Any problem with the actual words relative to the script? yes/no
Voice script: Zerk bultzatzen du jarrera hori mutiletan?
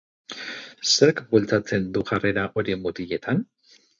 no